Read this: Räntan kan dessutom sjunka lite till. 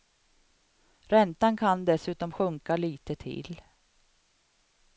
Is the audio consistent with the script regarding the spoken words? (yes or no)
yes